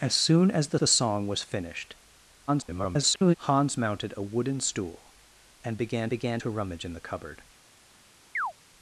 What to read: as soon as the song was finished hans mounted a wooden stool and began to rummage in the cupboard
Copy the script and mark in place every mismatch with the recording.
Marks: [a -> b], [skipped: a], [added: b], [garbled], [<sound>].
as soon as the [added: the] song was finished [garbled] hans mounted a wooden stool and began [added: began] to rummage in the cupboard [chirp]